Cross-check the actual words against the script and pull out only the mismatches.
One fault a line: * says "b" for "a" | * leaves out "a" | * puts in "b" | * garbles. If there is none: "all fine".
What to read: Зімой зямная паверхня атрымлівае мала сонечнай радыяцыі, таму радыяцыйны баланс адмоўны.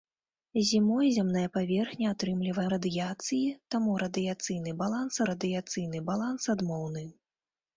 * says "радыяцыі таму радыяцыйны баланс" for "мала сонечнай радыяцыі таму"